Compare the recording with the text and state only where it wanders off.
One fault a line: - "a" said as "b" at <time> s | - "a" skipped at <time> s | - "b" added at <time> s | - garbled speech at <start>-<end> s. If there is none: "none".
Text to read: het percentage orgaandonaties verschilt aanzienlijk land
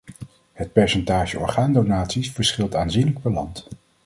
- "per" added at 3.2 s